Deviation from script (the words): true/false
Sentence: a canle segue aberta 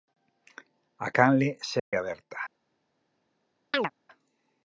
false